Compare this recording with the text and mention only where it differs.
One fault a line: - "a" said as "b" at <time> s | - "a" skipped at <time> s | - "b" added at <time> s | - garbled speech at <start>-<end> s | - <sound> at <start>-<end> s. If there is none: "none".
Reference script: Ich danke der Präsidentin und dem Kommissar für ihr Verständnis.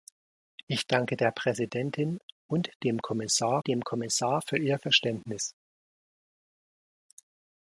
- "dem Kommissar" added at 3.7 s